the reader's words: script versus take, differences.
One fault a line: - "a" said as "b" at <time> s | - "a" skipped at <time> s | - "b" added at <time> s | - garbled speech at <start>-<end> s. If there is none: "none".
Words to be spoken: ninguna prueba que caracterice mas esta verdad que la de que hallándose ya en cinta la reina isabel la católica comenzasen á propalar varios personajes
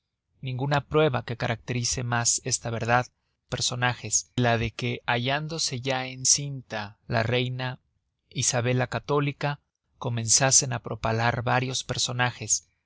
- "que" said as "personajes" at 3.5 s